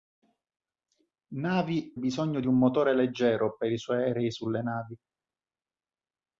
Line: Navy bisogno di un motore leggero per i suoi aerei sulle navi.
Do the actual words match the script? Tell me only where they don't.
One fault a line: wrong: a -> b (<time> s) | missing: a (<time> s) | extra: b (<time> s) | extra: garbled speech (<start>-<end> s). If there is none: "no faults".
no faults